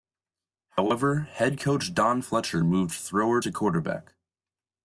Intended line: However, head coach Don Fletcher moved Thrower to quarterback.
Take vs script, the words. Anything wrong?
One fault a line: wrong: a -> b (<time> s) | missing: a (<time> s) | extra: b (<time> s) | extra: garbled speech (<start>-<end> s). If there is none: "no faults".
no faults